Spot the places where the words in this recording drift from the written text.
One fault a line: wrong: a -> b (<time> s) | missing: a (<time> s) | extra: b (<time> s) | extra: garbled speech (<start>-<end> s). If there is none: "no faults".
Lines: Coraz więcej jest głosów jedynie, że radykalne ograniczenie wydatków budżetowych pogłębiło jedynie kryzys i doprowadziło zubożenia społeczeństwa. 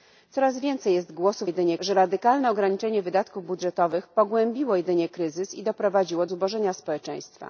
no faults